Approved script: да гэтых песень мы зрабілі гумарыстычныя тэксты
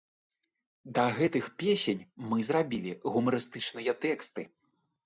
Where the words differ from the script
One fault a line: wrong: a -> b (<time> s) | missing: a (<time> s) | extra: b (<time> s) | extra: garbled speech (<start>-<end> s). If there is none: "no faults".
no faults